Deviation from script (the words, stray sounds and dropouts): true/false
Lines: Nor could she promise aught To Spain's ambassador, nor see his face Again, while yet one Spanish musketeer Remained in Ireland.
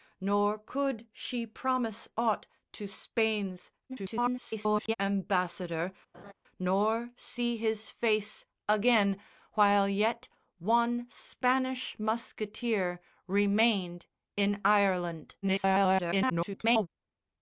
true